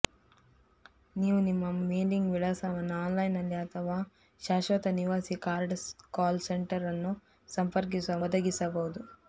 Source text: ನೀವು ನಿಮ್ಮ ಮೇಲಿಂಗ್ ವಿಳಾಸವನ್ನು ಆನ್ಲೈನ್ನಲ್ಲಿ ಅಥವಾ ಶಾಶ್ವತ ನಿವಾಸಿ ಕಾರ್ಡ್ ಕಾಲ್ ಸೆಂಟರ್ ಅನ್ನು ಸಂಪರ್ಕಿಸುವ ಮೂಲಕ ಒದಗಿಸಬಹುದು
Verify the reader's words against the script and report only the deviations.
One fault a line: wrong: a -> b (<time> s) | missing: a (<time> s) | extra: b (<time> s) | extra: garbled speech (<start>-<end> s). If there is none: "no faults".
missing: ಮೂಲಕ (8.2 s)